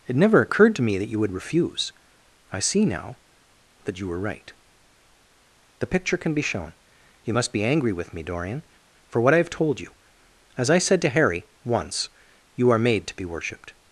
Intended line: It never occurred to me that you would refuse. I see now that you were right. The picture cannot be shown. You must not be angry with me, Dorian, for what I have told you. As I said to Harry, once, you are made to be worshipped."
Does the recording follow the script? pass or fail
fail